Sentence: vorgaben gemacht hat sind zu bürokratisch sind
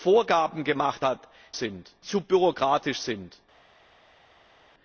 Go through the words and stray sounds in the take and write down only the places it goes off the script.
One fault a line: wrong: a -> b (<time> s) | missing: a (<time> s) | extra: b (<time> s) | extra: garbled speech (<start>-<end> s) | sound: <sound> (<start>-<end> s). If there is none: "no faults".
no faults